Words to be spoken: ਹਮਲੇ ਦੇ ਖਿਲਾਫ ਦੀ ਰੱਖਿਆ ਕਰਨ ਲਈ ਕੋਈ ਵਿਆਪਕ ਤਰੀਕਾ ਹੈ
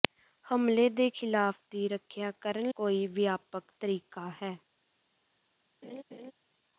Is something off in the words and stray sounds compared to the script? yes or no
yes